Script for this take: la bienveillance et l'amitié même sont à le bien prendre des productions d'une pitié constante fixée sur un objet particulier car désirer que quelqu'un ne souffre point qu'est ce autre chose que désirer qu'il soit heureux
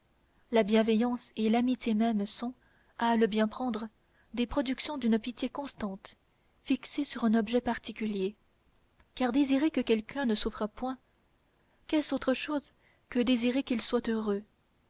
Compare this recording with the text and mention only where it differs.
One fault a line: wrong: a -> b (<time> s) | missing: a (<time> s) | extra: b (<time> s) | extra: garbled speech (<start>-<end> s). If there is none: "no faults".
no faults